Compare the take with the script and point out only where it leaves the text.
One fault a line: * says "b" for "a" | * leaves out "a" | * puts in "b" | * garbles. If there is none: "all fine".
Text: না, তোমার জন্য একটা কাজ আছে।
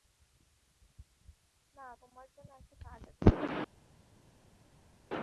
all fine